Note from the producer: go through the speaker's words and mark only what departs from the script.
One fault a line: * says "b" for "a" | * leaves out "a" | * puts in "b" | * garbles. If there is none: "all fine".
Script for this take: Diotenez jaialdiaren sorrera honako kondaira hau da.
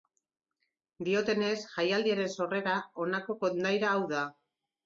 all fine